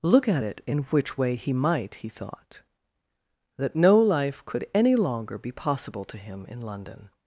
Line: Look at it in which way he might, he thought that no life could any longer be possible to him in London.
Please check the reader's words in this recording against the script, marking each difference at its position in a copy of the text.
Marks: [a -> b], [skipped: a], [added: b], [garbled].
Look at it in which way he might, he thought that no life could any longer be possible to him in London.